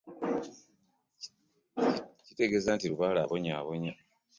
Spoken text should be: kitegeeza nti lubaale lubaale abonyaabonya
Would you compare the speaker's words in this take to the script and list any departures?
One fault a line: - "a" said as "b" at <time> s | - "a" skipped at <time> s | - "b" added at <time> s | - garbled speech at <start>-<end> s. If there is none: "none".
- "lubaale" skipped at 3.2 s